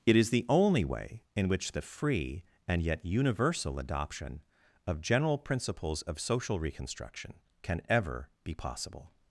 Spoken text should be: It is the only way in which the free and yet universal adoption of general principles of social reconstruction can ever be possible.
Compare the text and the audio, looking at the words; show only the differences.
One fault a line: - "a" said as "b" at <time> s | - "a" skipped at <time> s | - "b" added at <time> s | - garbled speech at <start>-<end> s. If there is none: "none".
none